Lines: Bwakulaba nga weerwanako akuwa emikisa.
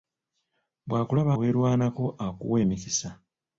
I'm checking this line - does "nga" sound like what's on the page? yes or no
no